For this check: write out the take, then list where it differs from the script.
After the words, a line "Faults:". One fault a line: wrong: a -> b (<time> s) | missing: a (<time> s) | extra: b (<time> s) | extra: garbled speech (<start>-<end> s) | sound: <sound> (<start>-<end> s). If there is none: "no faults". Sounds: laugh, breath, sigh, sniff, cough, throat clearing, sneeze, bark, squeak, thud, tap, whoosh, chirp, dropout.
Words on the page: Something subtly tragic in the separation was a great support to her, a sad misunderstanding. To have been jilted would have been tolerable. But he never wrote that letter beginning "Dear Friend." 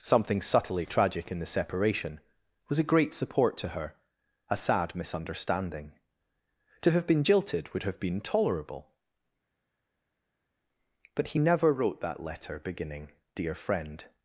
Something subtly tragic in the separation was a great support to her, a sad misunderstanding. To have been jilted would have been tolerable. But he never wrote that letter beginning "Dear Friend."
Faults:
no faults